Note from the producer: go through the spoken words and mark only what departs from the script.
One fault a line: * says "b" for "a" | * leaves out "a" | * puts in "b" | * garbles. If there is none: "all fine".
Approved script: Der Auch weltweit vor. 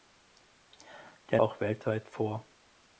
all fine